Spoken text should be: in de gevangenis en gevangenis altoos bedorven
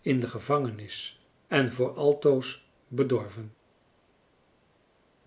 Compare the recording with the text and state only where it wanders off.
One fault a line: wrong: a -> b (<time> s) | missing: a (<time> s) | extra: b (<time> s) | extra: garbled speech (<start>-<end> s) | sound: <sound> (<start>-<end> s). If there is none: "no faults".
wrong: gevangenis -> voor (1.7 s)